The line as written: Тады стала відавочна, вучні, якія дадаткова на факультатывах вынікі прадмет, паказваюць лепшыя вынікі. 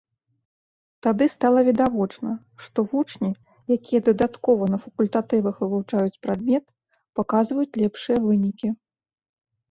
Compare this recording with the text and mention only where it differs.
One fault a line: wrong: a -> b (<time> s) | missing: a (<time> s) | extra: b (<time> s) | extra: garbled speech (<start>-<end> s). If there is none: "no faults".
extra: што (2.7 s)
wrong: вынікі -> вывучаюць (5.7 s)